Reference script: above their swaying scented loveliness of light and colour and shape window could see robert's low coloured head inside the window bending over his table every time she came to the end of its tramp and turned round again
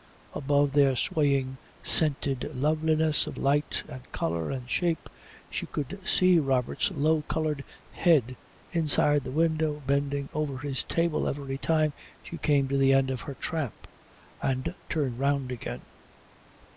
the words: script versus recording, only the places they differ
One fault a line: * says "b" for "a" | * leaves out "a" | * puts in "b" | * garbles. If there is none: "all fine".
* says "she" for "window"
* says "her" for "its"